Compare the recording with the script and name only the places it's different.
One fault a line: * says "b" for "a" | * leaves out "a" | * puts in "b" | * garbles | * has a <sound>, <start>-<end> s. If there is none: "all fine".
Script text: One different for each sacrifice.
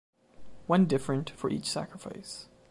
all fine